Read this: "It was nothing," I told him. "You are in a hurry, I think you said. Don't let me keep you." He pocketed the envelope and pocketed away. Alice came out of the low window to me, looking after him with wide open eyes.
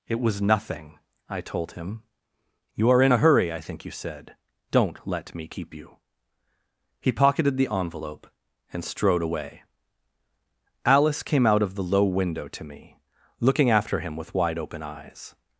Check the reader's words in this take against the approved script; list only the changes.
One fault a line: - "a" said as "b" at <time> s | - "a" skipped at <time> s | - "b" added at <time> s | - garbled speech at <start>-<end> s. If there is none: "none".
- "pocketed" said as "strode" at 8.8 s